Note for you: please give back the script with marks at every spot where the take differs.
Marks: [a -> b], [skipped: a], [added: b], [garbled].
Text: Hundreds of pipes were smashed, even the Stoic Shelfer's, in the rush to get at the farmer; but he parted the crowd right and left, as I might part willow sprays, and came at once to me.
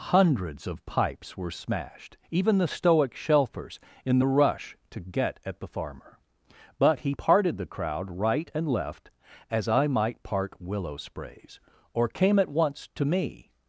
Hundreds of pipes were smashed, even the Stoic Shelfer's, in the rush to get at the farmer; but he parted the crowd right and left, as I might part willow sprays, [and -> or] came at once to me.